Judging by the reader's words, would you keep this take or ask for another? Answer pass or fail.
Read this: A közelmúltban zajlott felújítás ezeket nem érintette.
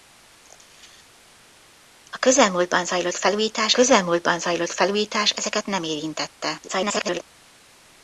fail